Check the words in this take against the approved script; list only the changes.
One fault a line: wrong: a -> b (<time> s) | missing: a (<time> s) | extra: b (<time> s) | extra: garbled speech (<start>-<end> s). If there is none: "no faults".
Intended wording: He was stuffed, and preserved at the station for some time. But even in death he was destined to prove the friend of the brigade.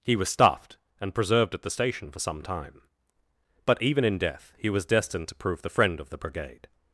no faults